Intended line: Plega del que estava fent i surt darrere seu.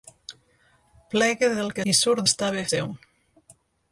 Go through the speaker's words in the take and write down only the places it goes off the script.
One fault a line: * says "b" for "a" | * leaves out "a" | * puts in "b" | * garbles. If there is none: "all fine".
* leaves out "estava fent"
* says "estava" for "darrere"